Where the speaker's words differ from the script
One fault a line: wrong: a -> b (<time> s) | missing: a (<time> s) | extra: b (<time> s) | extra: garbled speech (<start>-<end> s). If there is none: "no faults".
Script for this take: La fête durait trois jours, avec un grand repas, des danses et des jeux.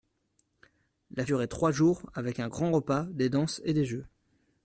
missing: fête (1.3 s)